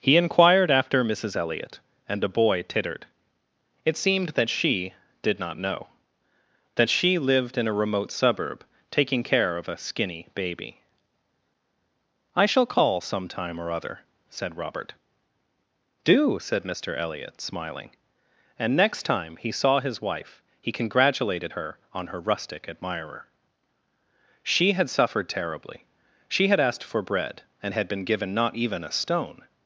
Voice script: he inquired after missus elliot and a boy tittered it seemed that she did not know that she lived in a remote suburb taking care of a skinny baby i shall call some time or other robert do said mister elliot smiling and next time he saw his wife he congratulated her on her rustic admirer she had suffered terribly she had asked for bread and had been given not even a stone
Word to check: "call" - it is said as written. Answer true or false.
true